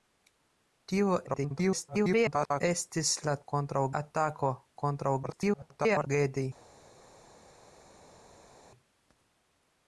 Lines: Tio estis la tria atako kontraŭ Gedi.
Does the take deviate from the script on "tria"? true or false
true